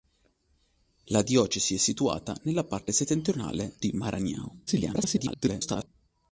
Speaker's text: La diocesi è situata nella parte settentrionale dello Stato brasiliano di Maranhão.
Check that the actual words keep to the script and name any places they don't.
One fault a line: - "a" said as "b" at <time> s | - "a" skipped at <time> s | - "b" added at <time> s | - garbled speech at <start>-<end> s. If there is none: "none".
- "dello Stato brasiliano" skipped at 3.8 s
- garbled speech at 4.7-5.9 s